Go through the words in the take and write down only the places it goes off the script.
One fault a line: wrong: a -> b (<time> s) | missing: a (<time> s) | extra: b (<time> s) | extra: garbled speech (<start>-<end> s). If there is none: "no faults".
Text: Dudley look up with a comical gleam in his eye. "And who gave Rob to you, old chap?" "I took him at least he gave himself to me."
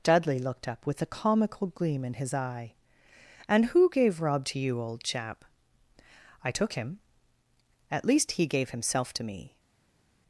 wrong: look -> looked (0.4 s)